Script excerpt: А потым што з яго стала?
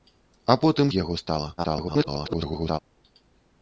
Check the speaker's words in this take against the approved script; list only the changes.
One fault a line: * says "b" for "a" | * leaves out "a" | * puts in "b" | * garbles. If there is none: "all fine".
* leaves out "што"
* garbles